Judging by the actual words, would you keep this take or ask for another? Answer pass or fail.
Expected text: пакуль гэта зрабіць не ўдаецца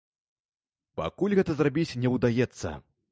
pass